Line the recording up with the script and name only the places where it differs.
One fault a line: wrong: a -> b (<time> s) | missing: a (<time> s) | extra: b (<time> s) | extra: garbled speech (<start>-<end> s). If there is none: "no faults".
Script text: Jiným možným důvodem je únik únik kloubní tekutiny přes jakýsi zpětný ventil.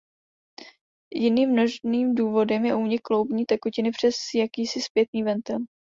missing: únik (3.0 s)